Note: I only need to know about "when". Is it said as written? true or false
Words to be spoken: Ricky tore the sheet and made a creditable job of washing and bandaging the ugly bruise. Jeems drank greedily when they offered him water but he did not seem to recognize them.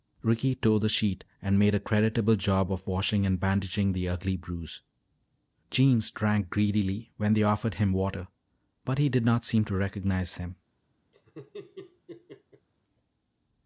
true